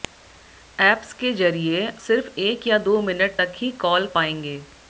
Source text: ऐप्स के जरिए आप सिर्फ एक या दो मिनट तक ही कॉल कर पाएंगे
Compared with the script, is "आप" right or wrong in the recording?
wrong